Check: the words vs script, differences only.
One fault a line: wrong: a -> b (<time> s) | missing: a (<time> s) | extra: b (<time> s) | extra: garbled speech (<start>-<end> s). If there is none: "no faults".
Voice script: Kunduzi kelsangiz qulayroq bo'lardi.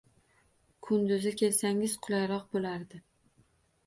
no faults